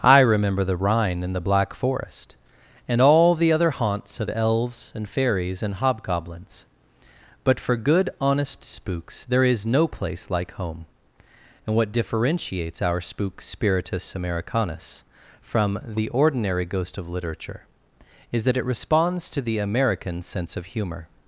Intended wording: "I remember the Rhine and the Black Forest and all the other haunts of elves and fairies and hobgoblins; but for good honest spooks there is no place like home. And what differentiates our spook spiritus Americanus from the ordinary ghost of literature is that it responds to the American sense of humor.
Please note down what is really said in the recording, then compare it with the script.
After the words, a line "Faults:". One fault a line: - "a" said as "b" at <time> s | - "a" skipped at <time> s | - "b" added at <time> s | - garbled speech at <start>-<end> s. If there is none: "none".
"I remember the Rhine and the Black Forest and all the other haunts of elves and fairies and hobgoblins; but for good honest spooks there is no place like home. And what differentiates our spook spiritus Americanus from the ordinary ghost of literature is that it responds to the American sense of humor.
Faults:
none